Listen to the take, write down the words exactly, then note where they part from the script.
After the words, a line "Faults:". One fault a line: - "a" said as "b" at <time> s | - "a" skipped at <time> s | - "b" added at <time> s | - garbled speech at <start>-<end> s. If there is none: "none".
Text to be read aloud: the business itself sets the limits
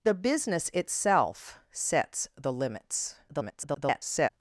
the business itself sets the limits [garbled]
Faults:
- garbled speech at 3.3-4.3 s